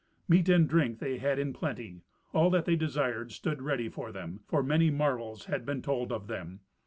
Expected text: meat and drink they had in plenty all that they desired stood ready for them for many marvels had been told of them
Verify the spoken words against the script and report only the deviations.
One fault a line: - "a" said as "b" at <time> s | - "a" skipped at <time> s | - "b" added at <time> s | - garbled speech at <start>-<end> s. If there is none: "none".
none